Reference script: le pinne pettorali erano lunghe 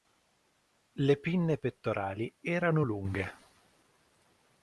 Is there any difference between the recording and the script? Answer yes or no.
no